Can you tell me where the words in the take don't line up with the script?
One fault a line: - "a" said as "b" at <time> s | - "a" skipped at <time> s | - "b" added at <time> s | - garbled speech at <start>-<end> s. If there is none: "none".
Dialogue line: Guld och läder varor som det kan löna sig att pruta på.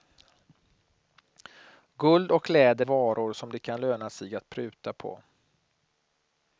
none